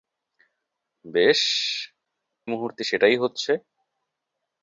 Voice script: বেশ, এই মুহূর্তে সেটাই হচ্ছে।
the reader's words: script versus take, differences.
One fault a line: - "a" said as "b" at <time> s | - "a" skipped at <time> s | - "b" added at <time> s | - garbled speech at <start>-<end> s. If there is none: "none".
- "এই" skipped at 1.4 s